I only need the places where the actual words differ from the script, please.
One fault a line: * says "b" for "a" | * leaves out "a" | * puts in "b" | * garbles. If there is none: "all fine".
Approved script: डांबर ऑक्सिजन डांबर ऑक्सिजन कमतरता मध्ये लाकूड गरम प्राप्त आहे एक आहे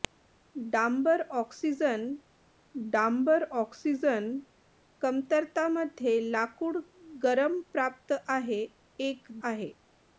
all fine